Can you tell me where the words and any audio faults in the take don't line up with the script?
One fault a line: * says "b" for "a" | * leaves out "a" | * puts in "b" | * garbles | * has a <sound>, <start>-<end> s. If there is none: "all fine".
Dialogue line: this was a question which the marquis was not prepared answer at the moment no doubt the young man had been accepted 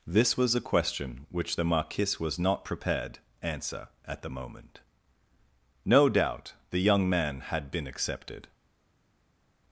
all fine